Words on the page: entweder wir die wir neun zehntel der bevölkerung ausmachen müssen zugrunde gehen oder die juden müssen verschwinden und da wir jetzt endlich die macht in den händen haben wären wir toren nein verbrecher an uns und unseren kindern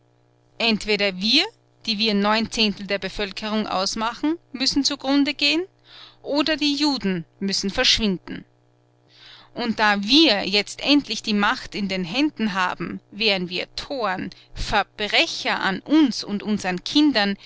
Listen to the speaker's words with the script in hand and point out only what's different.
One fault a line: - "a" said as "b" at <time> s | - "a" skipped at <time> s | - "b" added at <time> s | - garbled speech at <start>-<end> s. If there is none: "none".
- "nein" skipped at 14.3 s